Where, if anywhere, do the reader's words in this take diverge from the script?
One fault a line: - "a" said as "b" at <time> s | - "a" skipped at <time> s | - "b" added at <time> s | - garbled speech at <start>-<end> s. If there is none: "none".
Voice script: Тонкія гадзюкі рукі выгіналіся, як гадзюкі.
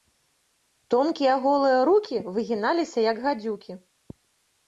- "гадзюкі" said as "голыя" at 1.4 s